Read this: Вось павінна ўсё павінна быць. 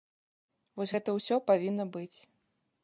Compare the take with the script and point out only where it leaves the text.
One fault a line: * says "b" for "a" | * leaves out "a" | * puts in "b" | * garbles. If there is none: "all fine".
* says "гэта" for "павінна"